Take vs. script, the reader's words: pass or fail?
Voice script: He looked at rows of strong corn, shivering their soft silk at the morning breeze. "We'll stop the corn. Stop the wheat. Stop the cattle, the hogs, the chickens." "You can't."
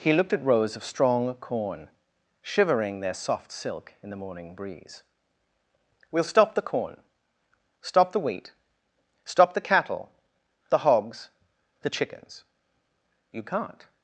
fail